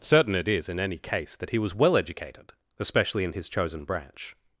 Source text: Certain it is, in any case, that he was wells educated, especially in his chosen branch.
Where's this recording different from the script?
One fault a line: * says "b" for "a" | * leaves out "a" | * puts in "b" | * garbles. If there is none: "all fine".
* says "well" for "wells"